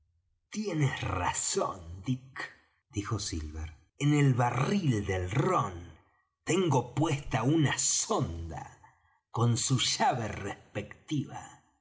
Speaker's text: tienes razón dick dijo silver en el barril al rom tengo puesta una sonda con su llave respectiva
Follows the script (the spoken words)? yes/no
no